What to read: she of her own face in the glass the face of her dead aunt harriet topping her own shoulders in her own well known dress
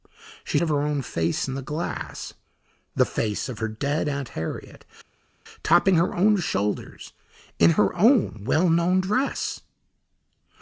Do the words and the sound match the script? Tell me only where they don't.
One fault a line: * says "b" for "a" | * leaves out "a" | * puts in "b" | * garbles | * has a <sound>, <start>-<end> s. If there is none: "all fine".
all fine